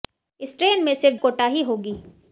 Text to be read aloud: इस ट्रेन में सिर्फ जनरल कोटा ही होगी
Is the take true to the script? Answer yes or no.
no